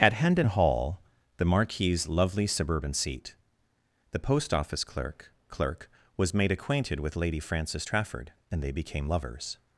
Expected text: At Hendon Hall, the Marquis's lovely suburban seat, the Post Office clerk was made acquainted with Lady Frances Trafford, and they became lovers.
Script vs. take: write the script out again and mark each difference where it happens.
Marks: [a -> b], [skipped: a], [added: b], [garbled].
At Hendon Hall, the Marquis's lovely suburban seat, the Post Office clerk [added: clerk] was made acquainted with Lady Frances Trafford, and they became lovers.